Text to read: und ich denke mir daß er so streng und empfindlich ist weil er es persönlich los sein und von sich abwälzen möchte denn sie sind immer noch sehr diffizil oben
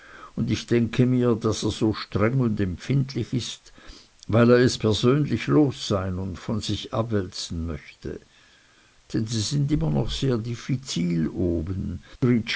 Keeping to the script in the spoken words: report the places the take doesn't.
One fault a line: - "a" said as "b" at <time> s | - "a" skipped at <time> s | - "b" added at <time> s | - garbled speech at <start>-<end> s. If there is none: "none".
none